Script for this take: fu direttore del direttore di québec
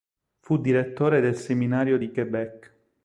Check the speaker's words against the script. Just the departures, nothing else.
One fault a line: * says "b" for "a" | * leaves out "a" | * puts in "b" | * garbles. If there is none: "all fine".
* says "seminario" for "direttore"